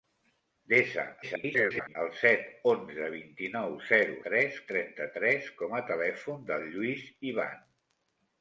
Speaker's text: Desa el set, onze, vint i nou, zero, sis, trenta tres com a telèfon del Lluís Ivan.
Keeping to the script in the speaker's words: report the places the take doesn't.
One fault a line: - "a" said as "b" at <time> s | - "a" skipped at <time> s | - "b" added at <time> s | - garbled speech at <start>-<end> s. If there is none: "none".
- garbled speech at 1.2-2.0 s
- "sis" said as "tres" at 4.3 s